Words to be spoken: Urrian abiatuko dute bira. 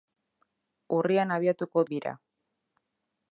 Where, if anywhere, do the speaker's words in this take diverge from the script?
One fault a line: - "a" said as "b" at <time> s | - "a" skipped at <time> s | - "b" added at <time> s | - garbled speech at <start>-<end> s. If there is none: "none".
- "dute" skipped at 1.9 s